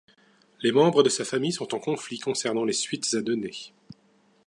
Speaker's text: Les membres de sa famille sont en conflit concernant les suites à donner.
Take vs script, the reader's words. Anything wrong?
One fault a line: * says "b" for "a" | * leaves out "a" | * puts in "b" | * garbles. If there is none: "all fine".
all fine